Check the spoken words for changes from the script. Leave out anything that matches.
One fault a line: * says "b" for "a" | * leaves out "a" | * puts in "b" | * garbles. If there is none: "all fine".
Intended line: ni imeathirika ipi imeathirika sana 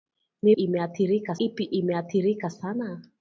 all fine